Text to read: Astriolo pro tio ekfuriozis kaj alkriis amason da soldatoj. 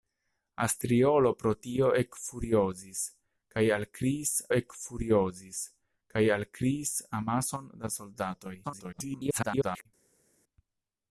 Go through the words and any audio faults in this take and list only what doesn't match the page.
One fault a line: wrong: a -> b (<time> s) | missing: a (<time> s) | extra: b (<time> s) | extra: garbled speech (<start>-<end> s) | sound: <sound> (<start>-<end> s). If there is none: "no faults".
extra: ekfuriozis kaj alkriis (4.6 s)
extra: garbled speech (8.6-9.9 s)